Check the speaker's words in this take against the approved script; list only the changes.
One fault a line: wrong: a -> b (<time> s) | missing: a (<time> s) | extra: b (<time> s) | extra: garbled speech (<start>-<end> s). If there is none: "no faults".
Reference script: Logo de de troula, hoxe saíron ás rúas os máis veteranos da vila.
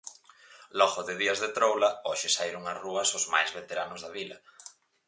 extra: días (1.2 s)